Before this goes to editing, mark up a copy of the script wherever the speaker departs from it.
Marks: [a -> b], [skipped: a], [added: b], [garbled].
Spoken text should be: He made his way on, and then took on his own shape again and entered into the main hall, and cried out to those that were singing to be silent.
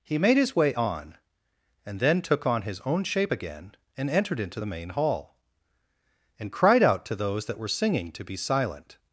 He made his way on, and then took on his own shape again and entered into the main hall, and cried out to those that were singing to be silent.